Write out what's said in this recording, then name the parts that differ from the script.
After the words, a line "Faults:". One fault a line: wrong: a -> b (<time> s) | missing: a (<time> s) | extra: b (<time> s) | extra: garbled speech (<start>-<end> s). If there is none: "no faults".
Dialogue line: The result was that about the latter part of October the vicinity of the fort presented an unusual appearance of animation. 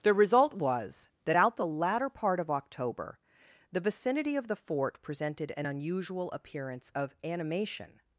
The result was that out the latter part of October the vicinity of the fort presented an unusual appearance of animation.
Faults:
wrong: about -> out (1.3 s)